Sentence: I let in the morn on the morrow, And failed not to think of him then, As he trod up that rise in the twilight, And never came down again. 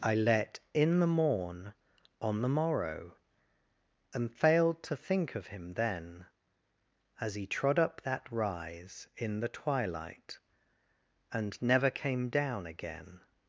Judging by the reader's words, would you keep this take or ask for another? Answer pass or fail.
fail